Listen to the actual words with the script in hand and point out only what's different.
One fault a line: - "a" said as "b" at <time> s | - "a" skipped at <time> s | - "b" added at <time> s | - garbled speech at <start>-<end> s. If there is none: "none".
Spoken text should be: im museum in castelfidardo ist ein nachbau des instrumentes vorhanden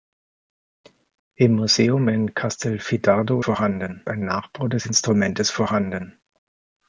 - "ist" said as "vorhanden" at 3.4 s